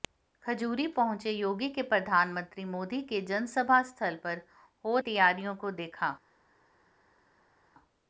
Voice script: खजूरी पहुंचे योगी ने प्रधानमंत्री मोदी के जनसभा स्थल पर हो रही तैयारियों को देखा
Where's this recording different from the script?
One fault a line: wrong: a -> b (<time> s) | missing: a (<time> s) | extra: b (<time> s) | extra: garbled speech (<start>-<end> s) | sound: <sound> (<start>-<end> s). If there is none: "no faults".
missing: रही (5.0 s)